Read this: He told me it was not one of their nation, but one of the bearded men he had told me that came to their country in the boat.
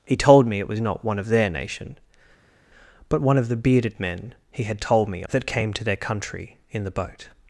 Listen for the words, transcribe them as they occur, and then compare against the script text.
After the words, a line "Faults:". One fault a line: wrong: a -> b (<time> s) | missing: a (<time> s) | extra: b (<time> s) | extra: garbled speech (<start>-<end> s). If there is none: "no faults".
He told me it was not one of their nation, but one of the bearded men he had told me that came to their country in the boat.
Faults:
no faults